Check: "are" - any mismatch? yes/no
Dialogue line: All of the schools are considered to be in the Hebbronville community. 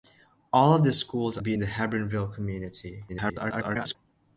yes